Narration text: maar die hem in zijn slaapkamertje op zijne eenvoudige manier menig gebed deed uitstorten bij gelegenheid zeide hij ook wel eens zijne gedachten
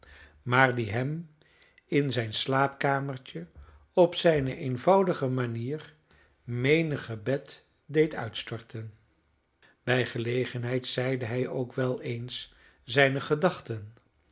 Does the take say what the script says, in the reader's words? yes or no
yes